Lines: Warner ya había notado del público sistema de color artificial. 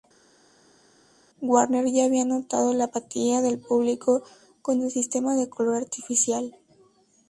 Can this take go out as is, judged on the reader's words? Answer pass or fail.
fail